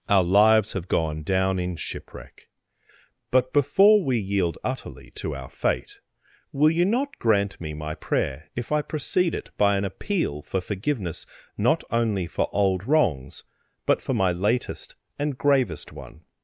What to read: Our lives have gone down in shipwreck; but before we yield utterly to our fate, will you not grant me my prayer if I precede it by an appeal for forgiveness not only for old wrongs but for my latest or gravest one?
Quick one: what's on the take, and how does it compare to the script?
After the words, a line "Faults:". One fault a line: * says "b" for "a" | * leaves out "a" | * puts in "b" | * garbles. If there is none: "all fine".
Our lives have gone down in shipwreck; but before we yield utterly to our fate, will you not grant me my prayer if I precede it by an appeal for forgiveness not only for old wrongs but for my latest and gravest one?
Faults:
* says "and" for "or"